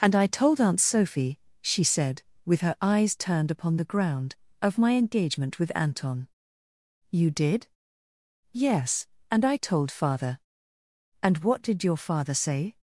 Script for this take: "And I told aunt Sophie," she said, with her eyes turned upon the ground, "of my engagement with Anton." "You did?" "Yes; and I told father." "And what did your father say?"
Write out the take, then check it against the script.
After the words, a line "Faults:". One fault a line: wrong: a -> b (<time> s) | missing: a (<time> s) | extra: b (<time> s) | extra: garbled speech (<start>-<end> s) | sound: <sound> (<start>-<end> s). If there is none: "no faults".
"And I told aunt Sophie," she said, with her eyes turned upon the ground, "of my engagement with Anton." "You did?" "Yes; and I told father." "And what did your father say?"
Faults:
no faults